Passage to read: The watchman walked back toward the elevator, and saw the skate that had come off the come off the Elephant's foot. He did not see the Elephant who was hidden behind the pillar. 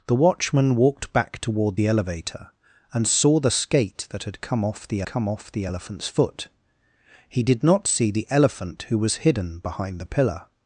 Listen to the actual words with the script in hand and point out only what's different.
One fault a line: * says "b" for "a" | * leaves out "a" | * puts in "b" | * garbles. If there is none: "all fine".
all fine